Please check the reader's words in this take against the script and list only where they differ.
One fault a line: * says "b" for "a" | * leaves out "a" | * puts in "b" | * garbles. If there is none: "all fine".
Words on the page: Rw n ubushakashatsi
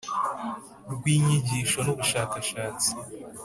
* puts in "inyigisho"